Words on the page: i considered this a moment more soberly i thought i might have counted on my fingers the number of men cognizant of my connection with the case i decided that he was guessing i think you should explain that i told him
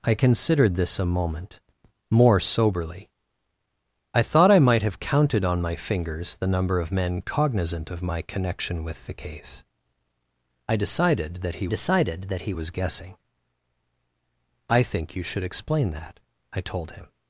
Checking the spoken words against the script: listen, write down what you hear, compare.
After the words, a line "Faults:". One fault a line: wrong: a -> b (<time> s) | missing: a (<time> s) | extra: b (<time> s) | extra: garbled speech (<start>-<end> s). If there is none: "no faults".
i considered this a moment more soberly i thought i might have counted on my fingers the number of men cognizant of my connection with the case i decided that he decided that he was guessing i think you should explain that i told him
Faults:
extra: decided that he (11.7 s)